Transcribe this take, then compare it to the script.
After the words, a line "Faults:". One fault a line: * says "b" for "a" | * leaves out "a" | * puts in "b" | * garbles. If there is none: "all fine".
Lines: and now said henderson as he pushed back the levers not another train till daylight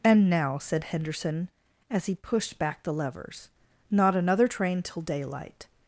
and now said henderson as he pushed back the levers not another train till daylight
Faults:
all fine